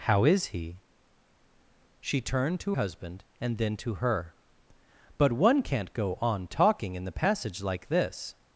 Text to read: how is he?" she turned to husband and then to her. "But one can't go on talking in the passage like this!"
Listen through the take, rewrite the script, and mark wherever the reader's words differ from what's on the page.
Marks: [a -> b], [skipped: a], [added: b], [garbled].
how is he?" she turned to husband and then to her. "But one can't go on talking in the passage like this!"